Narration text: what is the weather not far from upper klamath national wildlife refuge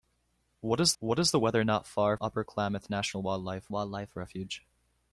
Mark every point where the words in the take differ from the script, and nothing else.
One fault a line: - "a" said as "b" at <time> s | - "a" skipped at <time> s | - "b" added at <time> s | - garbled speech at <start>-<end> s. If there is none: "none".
- "what is" added at 1.0 s
- "from" skipped at 2.1 s
- "wildlife" added at 3.7 s